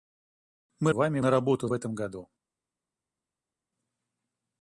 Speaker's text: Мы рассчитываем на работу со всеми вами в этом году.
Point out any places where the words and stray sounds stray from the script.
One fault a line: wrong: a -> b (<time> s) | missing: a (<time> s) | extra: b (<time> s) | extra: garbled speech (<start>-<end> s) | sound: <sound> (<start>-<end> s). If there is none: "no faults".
wrong: рассчитываем -> вами (0.9 s)
missing: со всеми вами (1.7 s)